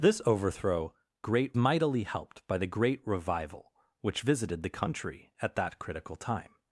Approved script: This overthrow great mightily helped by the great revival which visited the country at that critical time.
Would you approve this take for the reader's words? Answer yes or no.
yes